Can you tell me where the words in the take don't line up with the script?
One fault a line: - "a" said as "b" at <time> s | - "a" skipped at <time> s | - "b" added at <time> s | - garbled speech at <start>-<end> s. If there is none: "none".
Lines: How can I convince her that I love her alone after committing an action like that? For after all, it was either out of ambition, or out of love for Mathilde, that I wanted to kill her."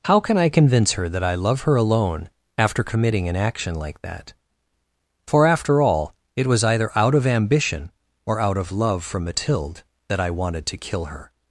none